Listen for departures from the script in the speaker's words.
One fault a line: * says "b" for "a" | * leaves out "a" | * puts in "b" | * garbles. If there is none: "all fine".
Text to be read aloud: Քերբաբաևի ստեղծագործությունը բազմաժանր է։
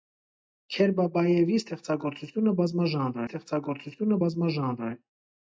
* puts in "ստեղծագործությունը բազմաժանր"